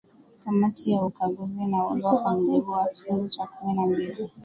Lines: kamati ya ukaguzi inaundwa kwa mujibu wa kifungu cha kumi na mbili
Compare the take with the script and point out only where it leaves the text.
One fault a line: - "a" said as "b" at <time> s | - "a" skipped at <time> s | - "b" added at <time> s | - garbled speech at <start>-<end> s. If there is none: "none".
none